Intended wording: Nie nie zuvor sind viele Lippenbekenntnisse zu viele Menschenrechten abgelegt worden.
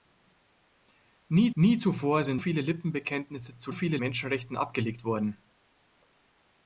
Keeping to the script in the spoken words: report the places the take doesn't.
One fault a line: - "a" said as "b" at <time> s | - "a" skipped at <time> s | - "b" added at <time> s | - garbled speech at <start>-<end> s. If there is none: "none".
none